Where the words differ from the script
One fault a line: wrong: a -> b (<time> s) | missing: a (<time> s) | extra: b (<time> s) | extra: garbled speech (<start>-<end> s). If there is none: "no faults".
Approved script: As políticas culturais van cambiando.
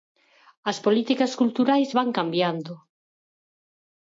no faults